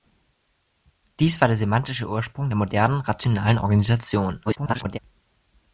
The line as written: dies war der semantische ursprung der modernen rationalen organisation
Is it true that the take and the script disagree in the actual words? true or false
true